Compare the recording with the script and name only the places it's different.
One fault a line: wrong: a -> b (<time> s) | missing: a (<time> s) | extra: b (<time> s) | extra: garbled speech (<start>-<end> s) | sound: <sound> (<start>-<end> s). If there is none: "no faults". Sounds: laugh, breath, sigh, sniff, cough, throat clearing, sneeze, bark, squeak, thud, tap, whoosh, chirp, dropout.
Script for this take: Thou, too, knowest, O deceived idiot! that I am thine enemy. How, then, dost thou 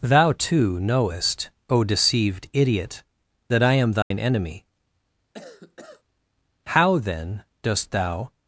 sound: dropout (4.0-4.1 s)
sound: cough (5.3-6.0 s)